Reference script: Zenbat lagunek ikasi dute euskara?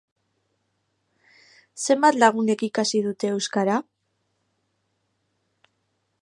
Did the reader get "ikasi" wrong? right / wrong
right